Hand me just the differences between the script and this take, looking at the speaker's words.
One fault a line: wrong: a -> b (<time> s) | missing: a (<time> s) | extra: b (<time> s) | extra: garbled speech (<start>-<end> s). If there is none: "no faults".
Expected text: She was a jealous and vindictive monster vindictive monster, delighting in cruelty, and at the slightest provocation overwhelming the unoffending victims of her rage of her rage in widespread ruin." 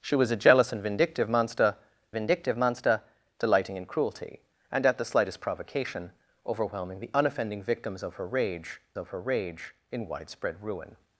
no faults